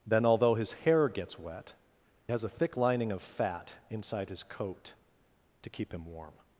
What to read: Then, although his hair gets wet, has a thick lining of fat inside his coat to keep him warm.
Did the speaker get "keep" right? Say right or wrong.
right